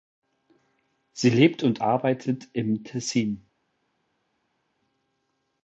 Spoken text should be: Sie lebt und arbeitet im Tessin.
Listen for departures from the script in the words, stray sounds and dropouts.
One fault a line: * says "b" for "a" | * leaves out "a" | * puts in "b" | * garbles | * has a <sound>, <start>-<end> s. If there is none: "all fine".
all fine